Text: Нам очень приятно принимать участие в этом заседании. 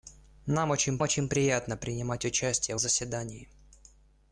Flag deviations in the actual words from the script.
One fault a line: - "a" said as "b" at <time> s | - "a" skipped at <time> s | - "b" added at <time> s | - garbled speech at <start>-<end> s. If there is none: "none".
- "очень" added at 1.0 s
- "этом" skipped at 2.8 s